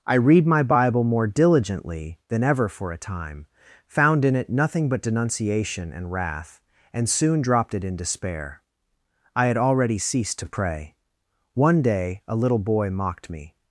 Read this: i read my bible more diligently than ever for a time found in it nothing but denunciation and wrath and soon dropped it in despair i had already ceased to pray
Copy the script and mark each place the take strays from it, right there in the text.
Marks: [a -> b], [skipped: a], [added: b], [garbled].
i read my bible more diligently than ever for a time found in it nothing but denunciation and wrath and soon dropped it in despair i had already ceased to pray [added: one day a little boy mocked me]